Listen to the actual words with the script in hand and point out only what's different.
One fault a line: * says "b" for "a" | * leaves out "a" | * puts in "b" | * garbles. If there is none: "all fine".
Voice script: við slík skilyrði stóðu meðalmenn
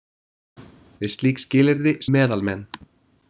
* leaves out "stóðu"